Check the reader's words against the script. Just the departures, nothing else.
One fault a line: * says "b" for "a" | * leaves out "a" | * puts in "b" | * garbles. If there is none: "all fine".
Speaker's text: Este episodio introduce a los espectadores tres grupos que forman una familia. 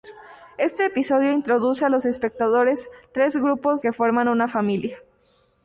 all fine